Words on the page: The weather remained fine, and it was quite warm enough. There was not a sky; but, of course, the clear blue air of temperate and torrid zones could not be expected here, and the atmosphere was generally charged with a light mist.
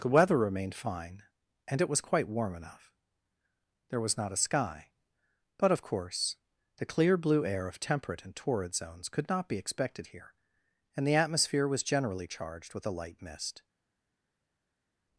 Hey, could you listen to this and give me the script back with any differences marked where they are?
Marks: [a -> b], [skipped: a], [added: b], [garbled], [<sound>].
The weather remained fine, and it was quite warm enough. There was not a sky; but, of course, the clear blue air of temperate and torrid zones could not be expected here, and the atmosphere was generally charged with a light mist.